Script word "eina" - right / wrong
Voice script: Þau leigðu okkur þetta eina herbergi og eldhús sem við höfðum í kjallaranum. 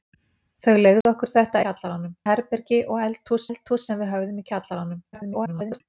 wrong